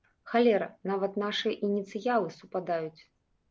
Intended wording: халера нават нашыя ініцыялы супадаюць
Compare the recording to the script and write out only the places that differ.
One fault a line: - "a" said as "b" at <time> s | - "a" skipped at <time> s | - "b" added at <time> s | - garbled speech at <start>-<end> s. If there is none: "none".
none